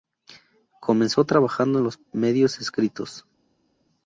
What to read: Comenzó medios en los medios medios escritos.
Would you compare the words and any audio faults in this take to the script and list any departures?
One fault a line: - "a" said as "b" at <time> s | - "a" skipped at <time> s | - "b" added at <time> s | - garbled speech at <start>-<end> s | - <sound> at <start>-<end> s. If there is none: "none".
- "medios" said as "trabajando" at 1.2 s
- "medios" skipped at 2.6 s